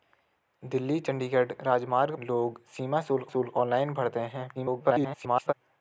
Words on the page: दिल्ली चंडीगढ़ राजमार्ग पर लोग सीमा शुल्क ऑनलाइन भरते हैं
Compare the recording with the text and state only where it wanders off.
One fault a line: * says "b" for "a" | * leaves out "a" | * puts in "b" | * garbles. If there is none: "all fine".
* leaves out "पर"
* puts in "शुल्क"
* garbles